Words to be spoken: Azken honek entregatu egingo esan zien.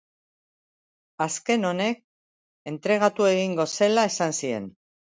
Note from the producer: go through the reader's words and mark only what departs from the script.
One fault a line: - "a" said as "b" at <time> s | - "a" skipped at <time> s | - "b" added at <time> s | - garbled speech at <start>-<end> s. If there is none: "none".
- "zela" added at 3.8 s